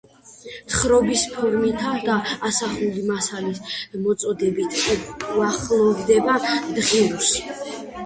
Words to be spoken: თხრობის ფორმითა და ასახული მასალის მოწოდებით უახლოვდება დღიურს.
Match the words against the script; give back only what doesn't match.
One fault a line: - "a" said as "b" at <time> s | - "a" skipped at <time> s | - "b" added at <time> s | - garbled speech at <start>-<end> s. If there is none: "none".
none